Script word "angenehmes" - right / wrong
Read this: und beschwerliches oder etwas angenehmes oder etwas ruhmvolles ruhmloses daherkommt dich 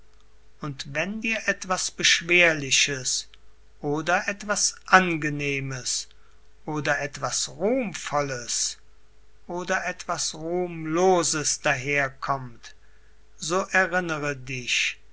right